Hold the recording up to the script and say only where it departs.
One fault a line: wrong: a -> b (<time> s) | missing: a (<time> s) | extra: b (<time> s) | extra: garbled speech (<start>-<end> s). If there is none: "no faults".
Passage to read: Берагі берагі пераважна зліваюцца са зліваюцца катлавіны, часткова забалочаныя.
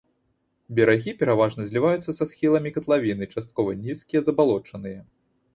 missing: берагі (1.1 s)
wrong: зліваюцца -> схіламі (2.3 s)
extra: нізкія (3.8 s)